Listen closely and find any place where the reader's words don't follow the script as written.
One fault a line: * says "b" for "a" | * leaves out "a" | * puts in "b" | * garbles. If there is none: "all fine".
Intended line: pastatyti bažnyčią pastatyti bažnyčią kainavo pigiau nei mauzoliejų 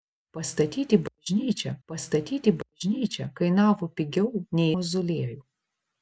all fine